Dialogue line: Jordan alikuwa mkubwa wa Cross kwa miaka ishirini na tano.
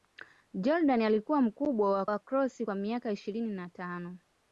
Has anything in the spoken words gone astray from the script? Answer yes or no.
yes